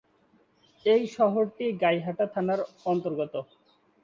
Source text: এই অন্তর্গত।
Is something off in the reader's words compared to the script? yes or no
yes